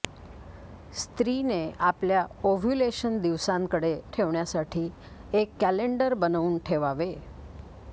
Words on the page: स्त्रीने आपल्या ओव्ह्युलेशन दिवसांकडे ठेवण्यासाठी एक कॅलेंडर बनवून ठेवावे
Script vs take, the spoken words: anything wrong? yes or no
no